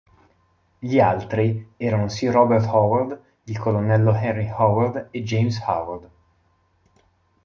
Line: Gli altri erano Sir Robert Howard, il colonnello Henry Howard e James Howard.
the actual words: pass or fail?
pass